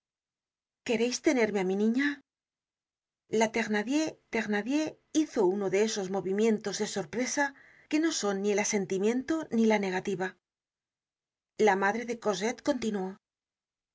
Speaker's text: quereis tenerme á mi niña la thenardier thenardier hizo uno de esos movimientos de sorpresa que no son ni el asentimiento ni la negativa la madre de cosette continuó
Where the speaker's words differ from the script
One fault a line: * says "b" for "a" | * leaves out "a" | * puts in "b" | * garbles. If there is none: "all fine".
all fine